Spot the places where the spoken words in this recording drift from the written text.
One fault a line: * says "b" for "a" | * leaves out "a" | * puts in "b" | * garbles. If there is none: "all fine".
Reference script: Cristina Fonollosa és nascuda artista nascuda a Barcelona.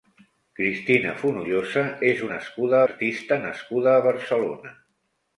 all fine